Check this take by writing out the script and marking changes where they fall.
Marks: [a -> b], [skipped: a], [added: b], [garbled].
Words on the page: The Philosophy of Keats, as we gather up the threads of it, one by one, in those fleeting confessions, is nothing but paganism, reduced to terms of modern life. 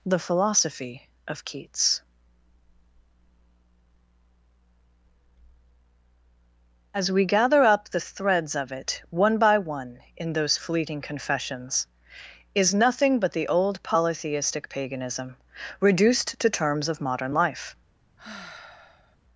The Philosophy of Keats, as we gather up the threads of it, one by one, in those fleeting confessions, is nothing but [added: the old polytheistic] paganism, reduced to terms of modern life.